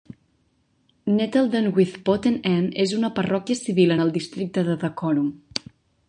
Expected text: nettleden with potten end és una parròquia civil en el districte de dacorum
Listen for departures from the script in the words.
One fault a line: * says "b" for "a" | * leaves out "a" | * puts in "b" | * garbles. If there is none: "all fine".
all fine